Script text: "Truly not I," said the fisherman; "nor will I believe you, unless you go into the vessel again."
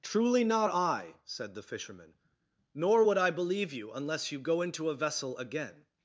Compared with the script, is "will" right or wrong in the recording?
wrong